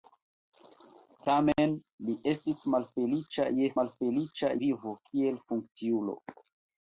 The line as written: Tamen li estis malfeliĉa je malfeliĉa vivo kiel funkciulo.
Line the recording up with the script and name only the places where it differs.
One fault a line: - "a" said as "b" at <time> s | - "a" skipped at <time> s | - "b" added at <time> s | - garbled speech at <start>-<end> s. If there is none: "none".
none